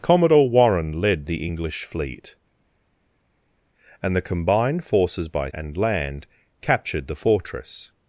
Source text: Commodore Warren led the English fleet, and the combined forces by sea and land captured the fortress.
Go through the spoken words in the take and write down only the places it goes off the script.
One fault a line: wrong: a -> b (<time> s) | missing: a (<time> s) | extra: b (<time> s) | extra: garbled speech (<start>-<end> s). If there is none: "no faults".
missing: sea (5.5 s)